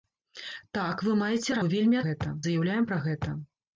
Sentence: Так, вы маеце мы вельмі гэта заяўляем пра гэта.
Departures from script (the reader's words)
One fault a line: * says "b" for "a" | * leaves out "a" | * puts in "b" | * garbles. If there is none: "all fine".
all fine